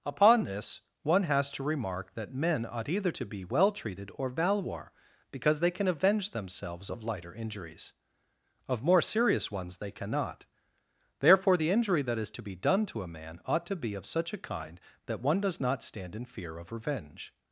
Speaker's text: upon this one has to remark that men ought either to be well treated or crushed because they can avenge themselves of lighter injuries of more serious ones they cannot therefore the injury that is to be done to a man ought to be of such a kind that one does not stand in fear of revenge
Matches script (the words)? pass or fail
fail